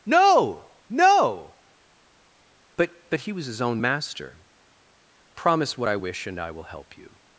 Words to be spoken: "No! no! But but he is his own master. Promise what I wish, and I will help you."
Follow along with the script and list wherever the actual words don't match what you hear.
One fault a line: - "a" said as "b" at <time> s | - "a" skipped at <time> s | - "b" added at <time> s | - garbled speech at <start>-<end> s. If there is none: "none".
- "is" said as "was" at 3.3 s